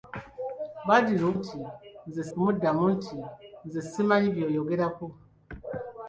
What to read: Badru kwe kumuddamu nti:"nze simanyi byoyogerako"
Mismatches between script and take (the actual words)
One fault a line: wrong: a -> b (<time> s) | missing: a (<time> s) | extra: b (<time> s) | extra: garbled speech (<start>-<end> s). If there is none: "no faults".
wrong: kwe -> nti:"nze (1.4 s)